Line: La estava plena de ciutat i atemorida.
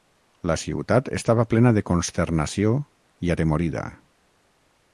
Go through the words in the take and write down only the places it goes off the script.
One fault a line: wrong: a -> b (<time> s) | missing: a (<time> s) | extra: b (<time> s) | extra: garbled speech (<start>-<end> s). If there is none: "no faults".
extra: ciutat (0.6 s)
wrong: ciutat -> consternació (1.9 s)